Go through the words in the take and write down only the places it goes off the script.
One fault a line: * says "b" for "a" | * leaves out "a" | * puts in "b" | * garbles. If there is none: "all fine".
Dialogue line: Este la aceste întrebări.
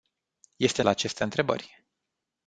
all fine